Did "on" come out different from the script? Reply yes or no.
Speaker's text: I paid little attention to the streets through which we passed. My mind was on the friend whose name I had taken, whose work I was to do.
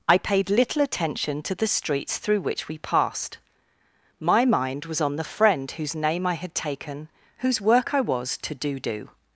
no